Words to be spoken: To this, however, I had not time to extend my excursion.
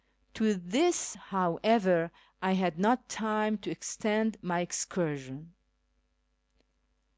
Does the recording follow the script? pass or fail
pass